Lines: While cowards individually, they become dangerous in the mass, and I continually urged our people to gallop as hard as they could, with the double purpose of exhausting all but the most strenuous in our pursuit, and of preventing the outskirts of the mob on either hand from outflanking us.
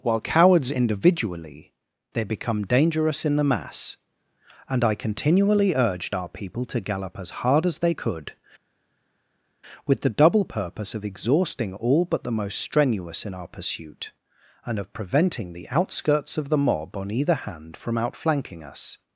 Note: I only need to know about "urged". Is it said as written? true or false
true